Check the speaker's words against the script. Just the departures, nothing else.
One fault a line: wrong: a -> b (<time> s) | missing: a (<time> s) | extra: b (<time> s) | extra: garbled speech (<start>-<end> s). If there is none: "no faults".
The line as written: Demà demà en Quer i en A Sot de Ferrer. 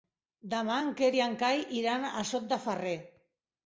missing: demà (0.8 s)
extra: Cai iran (1.5 s)